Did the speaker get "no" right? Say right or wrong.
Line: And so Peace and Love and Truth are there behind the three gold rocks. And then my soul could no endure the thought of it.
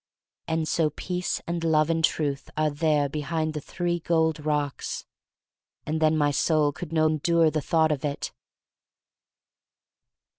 right